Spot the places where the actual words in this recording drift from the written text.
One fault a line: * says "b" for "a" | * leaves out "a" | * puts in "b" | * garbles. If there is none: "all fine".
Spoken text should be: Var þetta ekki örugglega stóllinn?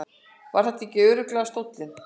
all fine